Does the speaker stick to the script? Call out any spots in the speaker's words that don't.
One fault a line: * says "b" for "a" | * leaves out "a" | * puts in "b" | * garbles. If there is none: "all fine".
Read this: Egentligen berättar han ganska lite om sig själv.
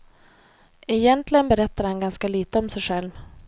all fine